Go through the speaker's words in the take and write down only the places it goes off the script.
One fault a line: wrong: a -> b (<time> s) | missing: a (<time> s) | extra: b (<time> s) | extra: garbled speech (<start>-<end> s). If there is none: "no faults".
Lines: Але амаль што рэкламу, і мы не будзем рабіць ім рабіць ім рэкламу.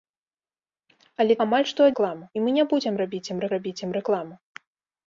no faults